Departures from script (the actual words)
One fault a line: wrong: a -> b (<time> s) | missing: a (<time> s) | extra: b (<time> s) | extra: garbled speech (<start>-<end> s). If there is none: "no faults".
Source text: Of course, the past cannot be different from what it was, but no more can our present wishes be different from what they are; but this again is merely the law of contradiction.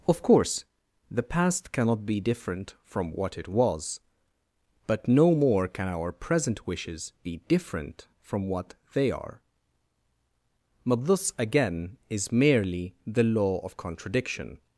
no faults